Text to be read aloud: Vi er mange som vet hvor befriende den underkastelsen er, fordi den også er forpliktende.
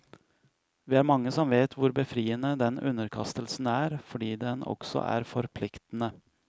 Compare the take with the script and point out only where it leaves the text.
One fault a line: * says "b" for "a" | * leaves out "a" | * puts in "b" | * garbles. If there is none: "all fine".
all fine